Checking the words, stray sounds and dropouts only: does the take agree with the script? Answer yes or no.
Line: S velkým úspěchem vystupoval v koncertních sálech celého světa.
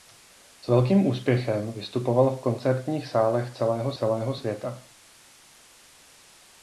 no